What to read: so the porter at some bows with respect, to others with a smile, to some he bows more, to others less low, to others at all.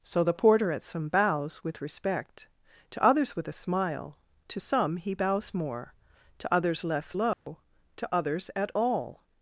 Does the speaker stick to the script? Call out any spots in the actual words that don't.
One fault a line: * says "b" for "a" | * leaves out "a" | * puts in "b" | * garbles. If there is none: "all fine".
all fine